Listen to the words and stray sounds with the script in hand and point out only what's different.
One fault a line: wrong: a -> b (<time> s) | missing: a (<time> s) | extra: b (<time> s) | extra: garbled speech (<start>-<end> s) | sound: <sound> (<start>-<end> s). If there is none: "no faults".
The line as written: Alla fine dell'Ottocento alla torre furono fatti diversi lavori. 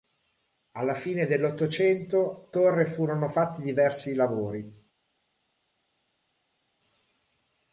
missing: alla (2.5 s)